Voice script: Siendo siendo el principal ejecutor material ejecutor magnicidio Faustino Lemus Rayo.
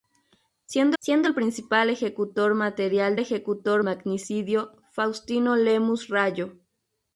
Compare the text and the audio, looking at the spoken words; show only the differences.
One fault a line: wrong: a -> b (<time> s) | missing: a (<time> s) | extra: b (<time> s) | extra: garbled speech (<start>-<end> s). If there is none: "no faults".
no faults